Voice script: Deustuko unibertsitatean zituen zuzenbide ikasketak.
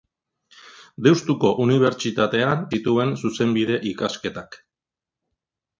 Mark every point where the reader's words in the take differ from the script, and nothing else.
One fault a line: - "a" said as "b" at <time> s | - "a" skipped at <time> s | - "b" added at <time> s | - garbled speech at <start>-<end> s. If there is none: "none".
none